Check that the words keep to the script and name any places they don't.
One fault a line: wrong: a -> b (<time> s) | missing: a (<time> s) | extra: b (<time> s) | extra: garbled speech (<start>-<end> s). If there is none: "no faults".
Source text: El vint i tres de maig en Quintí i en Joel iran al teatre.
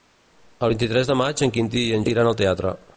missing: Joel (2.1 s)